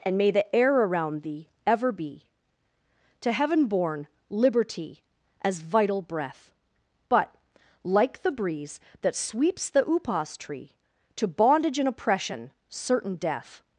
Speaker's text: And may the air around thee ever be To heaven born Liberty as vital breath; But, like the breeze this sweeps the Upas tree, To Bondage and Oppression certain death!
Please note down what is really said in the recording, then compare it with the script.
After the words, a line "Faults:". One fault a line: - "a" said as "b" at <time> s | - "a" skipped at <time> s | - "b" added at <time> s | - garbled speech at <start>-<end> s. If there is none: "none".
And may the air around thee ever be To heaven born Liberty as vital breath; But, like the breeze that sweeps the Upas tree, To Bondage and Oppression certain death!
Faults:
- "this" said as "that" at 9.0 s